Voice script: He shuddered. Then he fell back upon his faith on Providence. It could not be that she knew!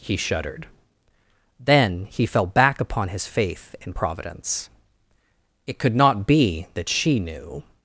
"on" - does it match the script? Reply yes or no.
no